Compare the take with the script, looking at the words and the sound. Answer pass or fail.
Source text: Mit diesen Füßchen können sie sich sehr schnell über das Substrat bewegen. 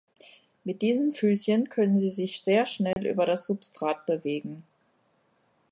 fail